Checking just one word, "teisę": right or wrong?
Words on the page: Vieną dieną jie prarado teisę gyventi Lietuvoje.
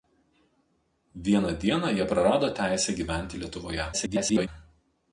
right